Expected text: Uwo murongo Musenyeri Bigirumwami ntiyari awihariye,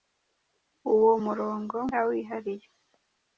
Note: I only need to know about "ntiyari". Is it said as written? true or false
false